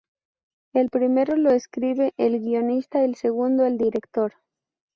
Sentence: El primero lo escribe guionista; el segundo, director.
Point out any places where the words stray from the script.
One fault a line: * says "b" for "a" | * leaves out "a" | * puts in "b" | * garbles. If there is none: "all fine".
* puts in "el"
* puts in "el"